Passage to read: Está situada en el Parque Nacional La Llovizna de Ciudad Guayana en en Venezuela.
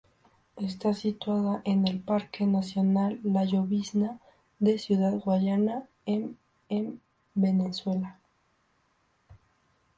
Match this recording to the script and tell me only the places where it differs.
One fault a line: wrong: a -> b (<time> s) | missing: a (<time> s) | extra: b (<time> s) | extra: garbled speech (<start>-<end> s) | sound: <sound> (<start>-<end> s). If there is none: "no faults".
no faults